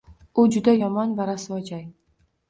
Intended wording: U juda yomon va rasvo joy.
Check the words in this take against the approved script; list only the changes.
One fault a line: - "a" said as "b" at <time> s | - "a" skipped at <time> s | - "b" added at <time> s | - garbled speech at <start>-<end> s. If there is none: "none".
none